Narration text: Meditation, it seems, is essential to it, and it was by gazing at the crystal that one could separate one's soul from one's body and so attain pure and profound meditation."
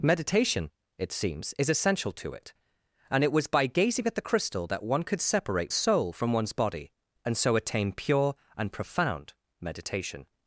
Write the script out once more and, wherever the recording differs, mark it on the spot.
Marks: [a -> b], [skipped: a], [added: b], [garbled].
Meditation, it seems, is essential to it, and it was by gazing at the crystal that one could separate [skipped: one's] soul from one's body and so attain pure and profound meditation."